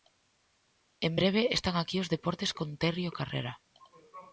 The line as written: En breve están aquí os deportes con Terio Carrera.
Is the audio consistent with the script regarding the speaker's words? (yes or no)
yes